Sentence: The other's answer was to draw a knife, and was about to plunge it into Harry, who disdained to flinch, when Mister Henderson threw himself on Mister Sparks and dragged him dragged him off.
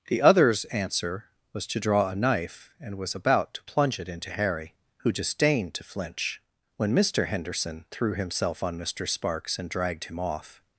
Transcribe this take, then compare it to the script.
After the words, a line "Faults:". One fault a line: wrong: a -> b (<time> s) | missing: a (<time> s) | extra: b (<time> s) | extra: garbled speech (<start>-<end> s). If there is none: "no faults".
The other's answer was to draw a knife, and was about to plunge it into Harry, who disdained to flinch, when Mister Henderson threw himself on Mister Sparks and dragged him off.
Faults:
missing: dragged him (10.2 s)